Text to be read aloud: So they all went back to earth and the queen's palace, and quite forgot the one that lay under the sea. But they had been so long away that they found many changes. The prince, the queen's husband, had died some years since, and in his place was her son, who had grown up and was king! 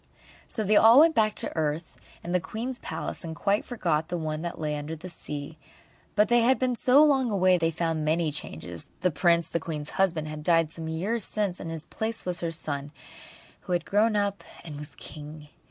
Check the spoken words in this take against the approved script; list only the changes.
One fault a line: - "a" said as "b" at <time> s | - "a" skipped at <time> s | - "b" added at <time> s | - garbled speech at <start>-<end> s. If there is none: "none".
- "that" skipped at 7.5 s